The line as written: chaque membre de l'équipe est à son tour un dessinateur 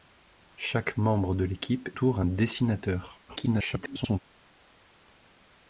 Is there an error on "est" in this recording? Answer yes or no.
yes